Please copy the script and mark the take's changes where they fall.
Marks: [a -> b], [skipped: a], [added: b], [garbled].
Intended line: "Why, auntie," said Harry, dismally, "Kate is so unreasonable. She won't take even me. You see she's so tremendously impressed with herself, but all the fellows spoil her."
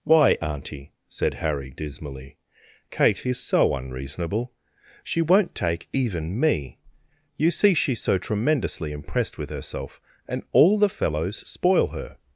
"Why, auntie," said Harry, dismally, "Kate is so unreasonable. She won't take even me. You see she's so tremendously impressed with herself, [but -> and] all the fellows spoil her."